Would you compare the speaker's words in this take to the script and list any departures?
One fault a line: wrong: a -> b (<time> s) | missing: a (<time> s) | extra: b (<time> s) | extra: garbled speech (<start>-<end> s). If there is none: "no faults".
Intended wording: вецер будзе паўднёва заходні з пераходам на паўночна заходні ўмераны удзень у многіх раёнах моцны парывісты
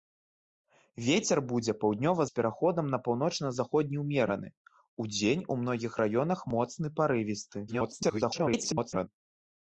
missing: заходні (2.2 s)
extra: garbled speech (7.7-9.1 s)